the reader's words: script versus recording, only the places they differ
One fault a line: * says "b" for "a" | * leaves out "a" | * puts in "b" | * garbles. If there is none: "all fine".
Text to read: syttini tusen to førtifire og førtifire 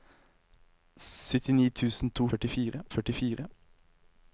all fine